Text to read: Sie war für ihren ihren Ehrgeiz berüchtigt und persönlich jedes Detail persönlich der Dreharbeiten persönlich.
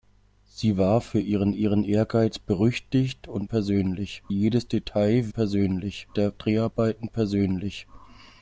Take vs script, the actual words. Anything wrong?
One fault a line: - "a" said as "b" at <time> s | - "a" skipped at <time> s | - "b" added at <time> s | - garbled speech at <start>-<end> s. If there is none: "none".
none